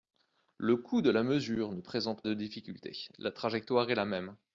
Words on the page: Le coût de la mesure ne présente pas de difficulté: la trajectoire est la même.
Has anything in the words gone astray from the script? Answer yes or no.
yes